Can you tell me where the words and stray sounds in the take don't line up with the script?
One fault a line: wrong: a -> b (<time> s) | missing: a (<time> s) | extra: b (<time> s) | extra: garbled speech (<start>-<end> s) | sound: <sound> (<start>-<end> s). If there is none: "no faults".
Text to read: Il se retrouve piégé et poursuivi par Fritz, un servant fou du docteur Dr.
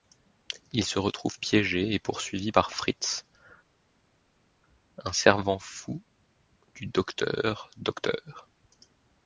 no faults